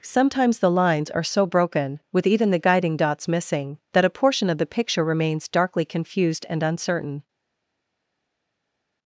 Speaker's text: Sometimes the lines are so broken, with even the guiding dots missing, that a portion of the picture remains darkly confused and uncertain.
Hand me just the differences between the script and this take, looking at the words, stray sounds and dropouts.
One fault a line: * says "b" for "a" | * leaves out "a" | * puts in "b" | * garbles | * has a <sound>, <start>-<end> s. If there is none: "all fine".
all fine